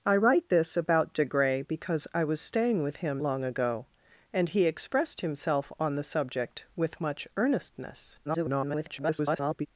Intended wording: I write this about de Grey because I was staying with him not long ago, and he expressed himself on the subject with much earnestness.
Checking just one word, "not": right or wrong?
wrong